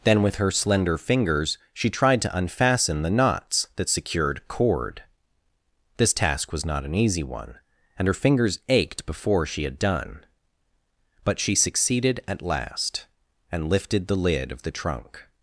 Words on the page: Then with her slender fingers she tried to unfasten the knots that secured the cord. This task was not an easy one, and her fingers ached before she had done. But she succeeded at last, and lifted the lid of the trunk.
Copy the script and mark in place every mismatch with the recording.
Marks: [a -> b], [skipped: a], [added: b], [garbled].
Then with her slender fingers she tried to unfasten the knots that secured [skipped: the] cord. This task was not an easy one, and her fingers ached before she had done. But she succeeded at last, and lifted the lid of the trunk.